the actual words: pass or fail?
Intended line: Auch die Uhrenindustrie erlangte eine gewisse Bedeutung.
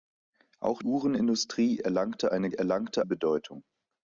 fail